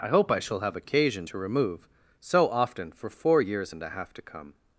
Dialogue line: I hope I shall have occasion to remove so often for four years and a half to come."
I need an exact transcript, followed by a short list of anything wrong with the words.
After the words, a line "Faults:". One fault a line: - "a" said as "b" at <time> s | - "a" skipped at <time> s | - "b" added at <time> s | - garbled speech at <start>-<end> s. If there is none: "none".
I hope I shall have occasion to remove so often for four years and a half to come."
Faults:
none